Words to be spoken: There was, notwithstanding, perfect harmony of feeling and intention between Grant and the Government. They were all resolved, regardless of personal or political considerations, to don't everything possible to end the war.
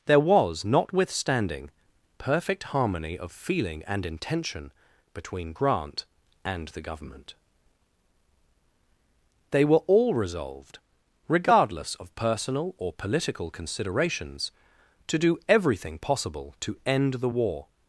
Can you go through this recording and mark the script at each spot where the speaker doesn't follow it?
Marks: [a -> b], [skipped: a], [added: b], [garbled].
There was, notwithstanding, perfect harmony of feeling and intention between Grant and the Government. They were all resolved, regardless of personal or political considerations, to [don't -> do] everything possible to end the war.